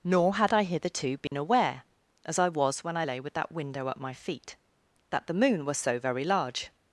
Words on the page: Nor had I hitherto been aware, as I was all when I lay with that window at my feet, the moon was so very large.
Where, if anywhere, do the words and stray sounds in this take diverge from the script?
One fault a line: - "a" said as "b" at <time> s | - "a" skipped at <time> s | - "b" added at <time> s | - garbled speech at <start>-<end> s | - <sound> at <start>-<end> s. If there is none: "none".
- dropout at 1.3-1.3 s
- "all" skipped at 2.8 s
- "that" added at 5.1 s